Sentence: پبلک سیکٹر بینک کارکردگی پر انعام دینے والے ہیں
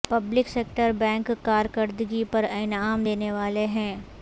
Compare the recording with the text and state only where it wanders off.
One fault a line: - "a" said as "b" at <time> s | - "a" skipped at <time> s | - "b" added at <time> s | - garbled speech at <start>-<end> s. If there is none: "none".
none